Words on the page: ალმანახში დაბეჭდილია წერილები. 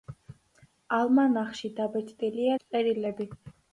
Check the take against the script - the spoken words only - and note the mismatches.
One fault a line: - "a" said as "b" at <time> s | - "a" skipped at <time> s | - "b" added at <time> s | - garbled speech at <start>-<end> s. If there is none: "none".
none